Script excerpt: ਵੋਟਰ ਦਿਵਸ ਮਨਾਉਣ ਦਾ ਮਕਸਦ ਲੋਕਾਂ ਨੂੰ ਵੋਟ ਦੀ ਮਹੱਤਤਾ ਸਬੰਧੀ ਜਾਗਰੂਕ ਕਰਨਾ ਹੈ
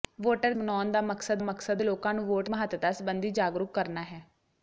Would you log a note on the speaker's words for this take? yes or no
yes